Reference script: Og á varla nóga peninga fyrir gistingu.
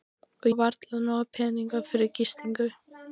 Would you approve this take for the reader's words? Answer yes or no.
yes